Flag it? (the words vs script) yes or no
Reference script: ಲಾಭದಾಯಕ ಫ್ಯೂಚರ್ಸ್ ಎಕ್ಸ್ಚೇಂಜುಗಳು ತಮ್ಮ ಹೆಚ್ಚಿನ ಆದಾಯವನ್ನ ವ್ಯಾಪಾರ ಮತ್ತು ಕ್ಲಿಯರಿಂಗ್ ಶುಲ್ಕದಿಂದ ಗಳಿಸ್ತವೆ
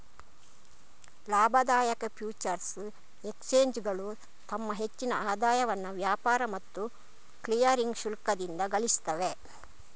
no